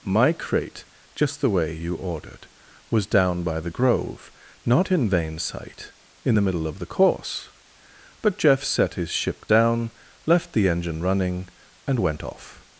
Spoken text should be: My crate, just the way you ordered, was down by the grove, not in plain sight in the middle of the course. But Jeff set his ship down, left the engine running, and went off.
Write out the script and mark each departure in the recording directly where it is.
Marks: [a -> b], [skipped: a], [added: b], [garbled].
My crate, just the way you ordered, was down by the grove, not in [plain -> vain] sight in the middle of the course. But Jeff set his ship down, left the engine running, and went off.